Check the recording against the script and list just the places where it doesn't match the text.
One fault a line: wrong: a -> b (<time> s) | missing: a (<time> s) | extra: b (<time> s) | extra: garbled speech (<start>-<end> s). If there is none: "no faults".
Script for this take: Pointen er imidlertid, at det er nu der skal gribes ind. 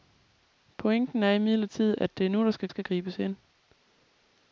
extra: skal (2.7 s)